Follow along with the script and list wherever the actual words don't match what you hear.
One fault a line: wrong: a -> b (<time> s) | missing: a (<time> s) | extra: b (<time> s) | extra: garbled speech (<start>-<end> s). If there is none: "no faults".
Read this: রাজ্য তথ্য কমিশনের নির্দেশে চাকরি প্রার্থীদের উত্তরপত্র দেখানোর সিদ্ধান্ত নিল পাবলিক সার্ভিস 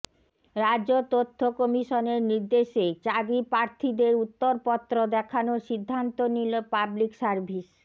no faults